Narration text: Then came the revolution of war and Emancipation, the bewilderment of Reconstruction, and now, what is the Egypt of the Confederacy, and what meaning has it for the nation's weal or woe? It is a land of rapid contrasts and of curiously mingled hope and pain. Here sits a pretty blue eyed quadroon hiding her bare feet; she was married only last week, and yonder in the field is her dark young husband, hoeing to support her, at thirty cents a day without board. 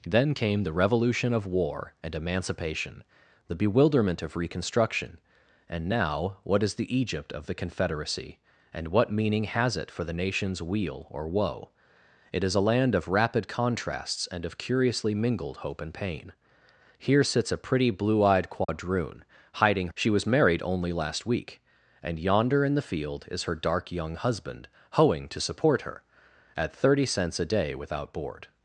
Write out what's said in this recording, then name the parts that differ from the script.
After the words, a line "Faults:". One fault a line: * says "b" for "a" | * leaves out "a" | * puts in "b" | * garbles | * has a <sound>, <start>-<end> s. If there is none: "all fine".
Then came the revolution of war and Emancipation, the bewilderment of Reconstruction, and now, what is the Egypt of the Confederacy, and what meaning has it for the nation's weal or woe? It is a land of rapid contrasts and of curiously mingled hope and pain. Here sits a pretty blue eyed quadroon hiding; she was married only last week, and yonder in the field is her dark young husband, hoeing to support her, at thirty cents a day without board.
Faults:
* has a dropout, 18.6-18.7 s
* leaves out "her bare feet"